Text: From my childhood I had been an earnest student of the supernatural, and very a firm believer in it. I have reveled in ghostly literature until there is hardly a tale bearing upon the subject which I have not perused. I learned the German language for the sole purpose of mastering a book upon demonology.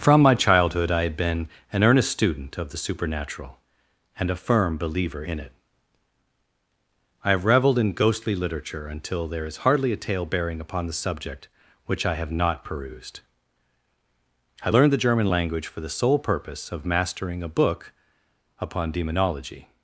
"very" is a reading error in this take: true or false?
true